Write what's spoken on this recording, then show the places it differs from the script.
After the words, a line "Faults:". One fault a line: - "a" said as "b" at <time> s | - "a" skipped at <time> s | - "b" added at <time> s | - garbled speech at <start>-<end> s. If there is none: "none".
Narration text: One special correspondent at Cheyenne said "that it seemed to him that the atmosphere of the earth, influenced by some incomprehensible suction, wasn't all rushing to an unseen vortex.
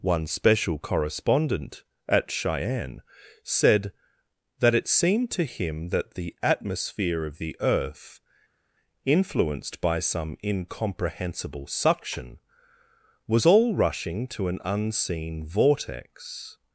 One special correspondent at Cheyenne said "that it seemed to him that the atmosphere of the earth, influenced by some incomprehensible suction, was all rushing to an unseen vortex.
Faults:
- "wasn't" said as "was" at 13.3 s